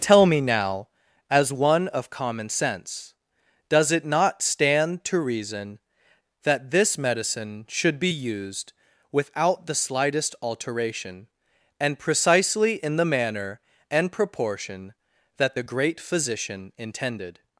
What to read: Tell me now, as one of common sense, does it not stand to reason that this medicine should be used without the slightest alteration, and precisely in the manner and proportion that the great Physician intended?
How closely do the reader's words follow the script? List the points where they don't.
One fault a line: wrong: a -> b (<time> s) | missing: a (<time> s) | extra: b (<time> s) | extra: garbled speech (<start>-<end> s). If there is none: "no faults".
no faults